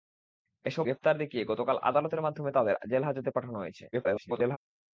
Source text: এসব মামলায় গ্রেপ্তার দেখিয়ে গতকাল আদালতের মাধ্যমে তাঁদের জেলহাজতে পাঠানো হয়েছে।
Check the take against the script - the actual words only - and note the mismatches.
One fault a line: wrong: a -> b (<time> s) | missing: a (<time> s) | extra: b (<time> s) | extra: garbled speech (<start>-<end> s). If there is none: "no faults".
missing: মামলায় (0.8 s)
extra: garbled speech (3.9-4.6 s)